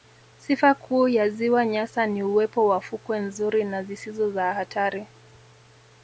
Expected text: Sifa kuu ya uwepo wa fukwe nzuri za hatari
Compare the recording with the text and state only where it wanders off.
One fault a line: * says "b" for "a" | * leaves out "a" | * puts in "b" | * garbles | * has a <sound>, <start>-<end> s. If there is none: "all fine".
* puts in "ziwa Nyasa ni"
* puts in "na zisizo"